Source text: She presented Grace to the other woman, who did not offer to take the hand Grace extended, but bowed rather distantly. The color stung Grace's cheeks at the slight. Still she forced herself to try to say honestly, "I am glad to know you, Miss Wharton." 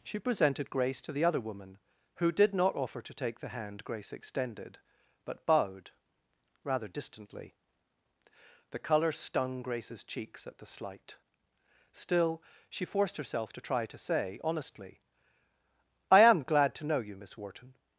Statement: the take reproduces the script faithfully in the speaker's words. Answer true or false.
true